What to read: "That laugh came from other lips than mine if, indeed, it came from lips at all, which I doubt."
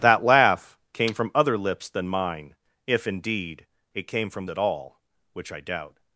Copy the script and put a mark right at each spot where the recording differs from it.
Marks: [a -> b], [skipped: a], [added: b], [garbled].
"That laugh came from other lips than mine if, indeed, it came from [skipped: lips] at all, which I doubt."